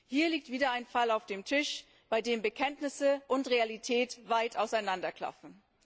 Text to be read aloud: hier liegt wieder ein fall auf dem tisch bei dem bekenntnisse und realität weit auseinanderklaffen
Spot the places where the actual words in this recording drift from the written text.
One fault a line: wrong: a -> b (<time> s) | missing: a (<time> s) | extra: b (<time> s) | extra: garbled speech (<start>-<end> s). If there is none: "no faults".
no faults